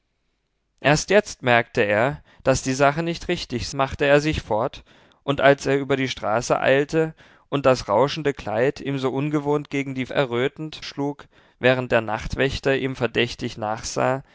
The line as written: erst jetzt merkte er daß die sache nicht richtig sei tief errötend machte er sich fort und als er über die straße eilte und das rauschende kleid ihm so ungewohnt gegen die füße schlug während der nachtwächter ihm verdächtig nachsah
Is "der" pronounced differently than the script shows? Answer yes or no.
no